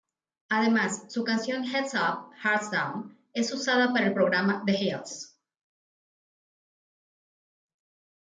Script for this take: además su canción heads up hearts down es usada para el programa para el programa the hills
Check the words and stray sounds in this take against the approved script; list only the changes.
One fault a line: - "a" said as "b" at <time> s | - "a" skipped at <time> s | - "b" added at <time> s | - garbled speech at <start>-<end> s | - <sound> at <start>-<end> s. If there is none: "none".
- "para el programa" skipped at 4.6 s